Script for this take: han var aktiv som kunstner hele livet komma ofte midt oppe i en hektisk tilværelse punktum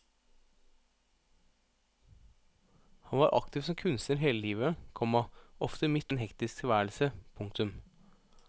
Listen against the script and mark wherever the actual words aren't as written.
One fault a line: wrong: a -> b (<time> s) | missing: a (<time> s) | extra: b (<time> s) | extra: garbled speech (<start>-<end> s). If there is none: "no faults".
missing: oppe (6.1 s)